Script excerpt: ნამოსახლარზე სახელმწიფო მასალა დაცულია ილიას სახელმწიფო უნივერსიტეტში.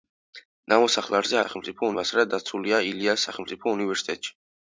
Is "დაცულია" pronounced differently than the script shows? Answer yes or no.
no